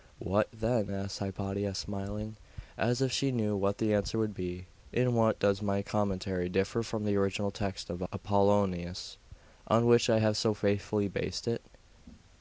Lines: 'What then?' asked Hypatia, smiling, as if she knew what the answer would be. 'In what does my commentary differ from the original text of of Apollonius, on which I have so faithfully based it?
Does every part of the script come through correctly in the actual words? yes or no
no